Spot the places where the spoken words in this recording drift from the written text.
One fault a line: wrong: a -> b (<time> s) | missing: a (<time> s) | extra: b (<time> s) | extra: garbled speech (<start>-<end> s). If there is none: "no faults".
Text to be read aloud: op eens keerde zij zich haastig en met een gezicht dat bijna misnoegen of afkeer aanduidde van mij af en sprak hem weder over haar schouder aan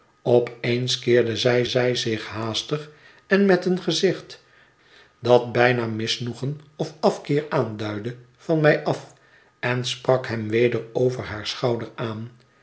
extra: zij (1.7 s)